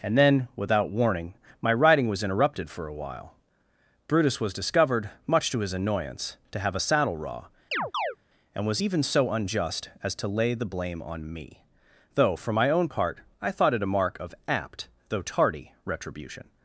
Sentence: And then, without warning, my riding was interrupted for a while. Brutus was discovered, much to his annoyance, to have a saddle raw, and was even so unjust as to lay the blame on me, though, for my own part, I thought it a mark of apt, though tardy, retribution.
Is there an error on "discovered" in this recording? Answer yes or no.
no